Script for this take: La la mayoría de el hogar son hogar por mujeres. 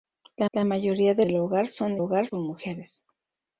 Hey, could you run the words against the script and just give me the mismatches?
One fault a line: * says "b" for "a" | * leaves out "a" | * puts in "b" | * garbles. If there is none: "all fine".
all fine